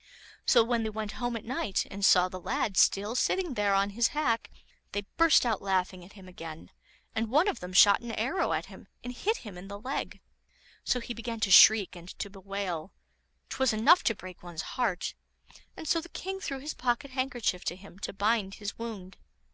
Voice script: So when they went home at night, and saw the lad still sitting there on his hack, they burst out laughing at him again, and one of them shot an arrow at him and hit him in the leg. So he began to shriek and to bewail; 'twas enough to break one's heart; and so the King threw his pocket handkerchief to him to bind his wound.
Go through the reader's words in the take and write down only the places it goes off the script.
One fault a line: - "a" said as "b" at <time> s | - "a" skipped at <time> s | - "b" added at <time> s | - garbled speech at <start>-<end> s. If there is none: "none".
none